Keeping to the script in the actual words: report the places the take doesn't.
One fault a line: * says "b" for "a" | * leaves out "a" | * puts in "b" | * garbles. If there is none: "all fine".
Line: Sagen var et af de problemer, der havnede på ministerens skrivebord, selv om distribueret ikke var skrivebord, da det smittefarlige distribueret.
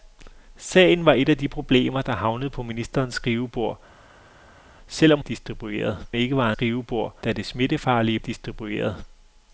all fine